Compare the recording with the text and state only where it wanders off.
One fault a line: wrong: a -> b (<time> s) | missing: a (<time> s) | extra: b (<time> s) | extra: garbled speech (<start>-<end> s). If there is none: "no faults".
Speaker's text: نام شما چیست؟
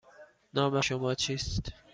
no faults